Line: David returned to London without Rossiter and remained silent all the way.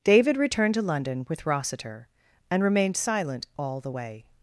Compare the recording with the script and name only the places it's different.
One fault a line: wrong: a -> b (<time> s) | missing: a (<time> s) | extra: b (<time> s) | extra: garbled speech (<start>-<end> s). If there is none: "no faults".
wrong: without -> with (1.3 s)